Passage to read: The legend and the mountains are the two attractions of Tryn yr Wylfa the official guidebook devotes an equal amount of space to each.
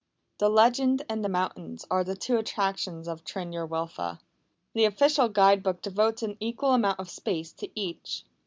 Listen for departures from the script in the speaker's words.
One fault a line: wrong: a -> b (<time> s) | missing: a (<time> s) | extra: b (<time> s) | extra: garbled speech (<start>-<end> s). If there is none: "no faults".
no faults